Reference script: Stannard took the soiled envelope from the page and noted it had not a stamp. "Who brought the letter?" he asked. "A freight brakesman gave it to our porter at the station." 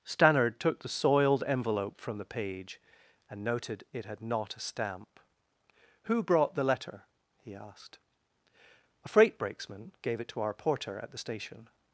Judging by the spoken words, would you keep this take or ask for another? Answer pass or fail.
pass